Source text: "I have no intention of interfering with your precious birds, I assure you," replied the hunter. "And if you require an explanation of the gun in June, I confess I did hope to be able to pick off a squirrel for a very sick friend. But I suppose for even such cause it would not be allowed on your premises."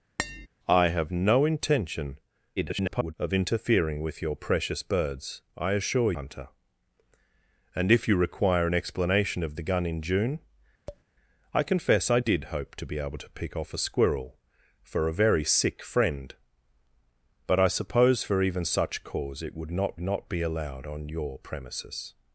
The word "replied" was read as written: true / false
false